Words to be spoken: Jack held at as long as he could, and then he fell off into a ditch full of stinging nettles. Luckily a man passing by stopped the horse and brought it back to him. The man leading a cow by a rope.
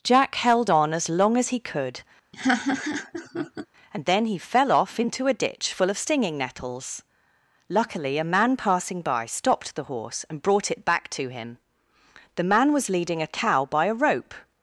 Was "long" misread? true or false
false